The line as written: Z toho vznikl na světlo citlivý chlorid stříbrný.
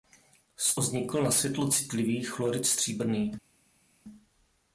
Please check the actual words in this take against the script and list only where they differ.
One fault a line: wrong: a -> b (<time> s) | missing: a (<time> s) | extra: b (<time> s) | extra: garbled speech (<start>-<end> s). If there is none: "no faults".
missing: toho (0.8 s)